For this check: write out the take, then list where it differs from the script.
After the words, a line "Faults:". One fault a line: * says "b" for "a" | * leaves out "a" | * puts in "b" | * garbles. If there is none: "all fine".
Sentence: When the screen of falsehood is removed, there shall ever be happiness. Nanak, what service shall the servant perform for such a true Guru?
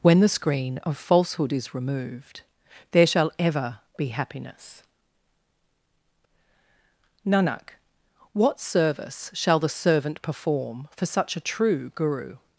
When the screen of falsehood is removed, there shall ever be happiness. Nanak, what service shall the servant perform for such a true Guru?
Faults:
all fine